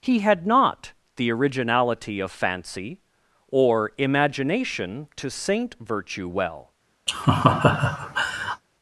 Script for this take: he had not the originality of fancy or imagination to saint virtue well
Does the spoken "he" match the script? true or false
true